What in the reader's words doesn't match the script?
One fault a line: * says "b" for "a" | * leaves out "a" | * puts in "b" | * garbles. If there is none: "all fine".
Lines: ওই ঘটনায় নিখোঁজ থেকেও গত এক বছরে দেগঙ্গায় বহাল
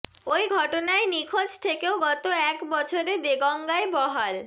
all fine